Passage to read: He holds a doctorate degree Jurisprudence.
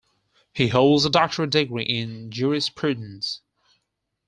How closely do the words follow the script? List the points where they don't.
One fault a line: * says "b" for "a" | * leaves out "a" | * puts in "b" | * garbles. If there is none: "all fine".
* puts in "in"